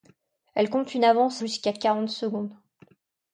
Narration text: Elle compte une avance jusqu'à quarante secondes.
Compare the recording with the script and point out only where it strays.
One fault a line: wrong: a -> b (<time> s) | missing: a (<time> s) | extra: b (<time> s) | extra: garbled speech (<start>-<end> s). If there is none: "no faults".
no faults